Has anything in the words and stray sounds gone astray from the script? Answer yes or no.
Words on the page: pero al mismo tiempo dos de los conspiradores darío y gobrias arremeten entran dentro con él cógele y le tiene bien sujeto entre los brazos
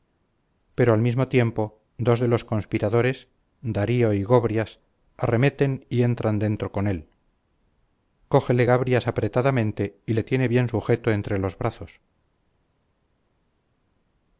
yes